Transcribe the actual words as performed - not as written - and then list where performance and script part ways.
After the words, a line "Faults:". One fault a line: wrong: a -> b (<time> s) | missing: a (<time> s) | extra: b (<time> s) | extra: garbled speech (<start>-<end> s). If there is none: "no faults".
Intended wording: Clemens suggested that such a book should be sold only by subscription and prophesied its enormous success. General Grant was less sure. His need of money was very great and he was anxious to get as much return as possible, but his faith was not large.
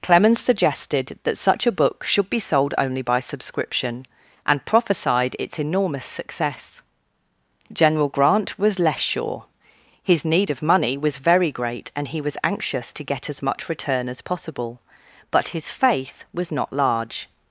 Clemens suggested that such a book should be sold only by subscription and prophesied its enormous success. General Grant was less sure. His need of money was very great and he was anxious to get as much return as possible, but his faith was not large.
Faults:
no faults